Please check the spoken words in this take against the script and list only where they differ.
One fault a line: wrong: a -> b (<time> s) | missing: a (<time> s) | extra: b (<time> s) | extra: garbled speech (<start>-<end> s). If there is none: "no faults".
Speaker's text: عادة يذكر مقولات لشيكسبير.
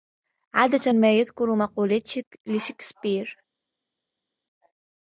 extra: ما (0.9 s)